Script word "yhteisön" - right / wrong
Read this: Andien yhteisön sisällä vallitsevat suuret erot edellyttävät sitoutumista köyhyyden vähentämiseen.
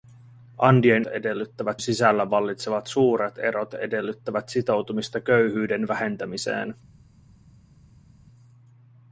wrong